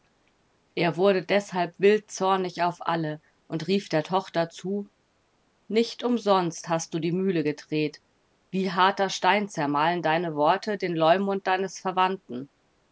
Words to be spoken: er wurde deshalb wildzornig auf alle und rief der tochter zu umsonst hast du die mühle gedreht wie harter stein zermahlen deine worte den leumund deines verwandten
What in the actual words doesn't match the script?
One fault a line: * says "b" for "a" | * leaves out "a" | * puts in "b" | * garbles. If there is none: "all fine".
* puts in "nicht"